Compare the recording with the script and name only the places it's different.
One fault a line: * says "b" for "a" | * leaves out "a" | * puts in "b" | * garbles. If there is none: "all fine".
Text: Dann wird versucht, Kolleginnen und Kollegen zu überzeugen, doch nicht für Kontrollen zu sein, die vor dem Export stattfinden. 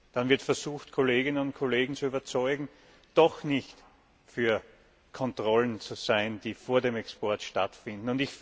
all fine